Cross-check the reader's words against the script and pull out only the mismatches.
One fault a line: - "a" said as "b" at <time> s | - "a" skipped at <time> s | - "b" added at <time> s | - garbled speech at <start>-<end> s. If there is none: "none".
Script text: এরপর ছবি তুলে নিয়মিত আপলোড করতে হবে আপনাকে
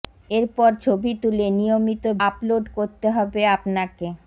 none